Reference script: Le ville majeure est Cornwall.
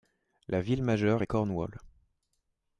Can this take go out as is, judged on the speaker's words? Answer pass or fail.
fail